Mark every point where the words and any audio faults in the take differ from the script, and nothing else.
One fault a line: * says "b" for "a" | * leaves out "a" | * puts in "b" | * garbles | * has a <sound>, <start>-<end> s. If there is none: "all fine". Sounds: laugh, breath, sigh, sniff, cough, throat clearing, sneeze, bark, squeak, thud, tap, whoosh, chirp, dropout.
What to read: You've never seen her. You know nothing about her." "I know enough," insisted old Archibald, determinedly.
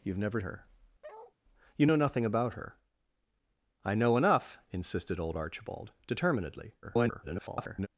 * leaves out "seen"
* has a bark, 1.0-1.3 s
* garbles